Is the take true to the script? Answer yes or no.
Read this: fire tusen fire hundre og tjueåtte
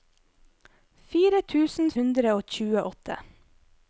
no